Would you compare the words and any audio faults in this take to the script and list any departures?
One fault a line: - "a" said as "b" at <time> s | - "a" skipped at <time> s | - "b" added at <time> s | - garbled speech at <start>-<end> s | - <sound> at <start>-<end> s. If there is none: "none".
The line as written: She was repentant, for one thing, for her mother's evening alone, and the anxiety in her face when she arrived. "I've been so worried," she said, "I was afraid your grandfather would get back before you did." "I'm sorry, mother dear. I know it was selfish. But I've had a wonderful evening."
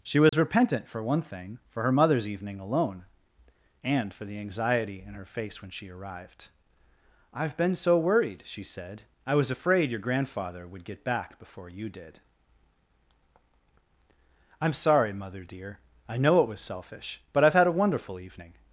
- dropout at 0.3-0.3 s
- "for" added at 4.1 s